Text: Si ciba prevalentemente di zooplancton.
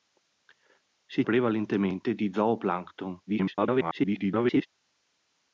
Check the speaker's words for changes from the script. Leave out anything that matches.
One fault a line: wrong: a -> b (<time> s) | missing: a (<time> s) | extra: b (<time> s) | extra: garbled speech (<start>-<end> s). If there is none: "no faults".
missing: ciba (1.2 s)
extra: garbled speech (3.3-4.7 s)